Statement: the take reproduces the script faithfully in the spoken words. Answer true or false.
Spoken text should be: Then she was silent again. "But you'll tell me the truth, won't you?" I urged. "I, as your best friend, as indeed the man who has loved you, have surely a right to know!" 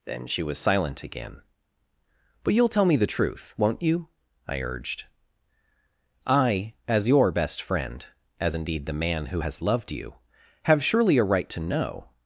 true